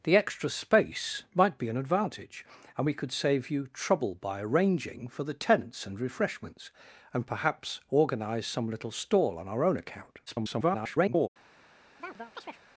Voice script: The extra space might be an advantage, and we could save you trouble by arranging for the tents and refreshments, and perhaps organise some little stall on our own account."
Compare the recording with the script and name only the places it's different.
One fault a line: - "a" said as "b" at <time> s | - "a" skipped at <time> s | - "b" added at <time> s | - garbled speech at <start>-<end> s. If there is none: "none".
- garbled speech at 10.3-11.3 s